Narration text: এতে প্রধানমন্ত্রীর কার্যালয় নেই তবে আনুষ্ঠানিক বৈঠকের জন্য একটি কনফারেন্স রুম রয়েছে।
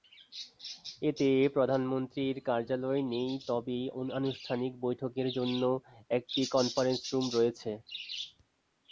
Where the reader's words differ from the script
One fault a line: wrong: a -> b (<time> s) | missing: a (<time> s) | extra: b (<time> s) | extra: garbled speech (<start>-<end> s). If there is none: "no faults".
no faults